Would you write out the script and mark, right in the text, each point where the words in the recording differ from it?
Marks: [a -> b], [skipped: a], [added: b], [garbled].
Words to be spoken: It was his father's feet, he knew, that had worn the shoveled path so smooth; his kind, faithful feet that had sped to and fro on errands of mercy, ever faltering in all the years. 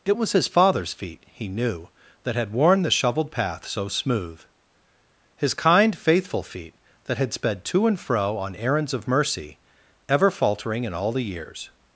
It was his father's feet, he knew, that had worn the shoveled path so smooth; his kind, faithful feet that had sped to and fro on errands of mercy, ever faltering in all the years.